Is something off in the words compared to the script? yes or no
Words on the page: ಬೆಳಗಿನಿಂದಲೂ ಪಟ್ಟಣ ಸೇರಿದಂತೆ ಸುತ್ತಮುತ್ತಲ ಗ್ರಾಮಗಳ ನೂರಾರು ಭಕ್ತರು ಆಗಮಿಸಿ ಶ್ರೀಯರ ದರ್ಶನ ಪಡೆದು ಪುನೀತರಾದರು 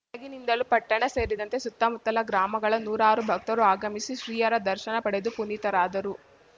no